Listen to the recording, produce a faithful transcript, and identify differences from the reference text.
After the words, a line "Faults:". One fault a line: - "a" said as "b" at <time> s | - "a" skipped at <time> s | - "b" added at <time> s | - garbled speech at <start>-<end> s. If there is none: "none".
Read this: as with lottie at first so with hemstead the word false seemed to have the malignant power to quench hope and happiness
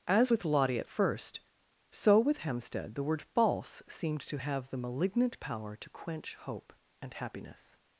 as with lottie at first so with hemstead the word false seemed to have the malignant power to quench hope and happiness
Faults:
none